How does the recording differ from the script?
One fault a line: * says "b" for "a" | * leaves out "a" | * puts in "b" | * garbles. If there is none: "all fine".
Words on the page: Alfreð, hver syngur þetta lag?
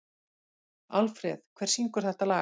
all fine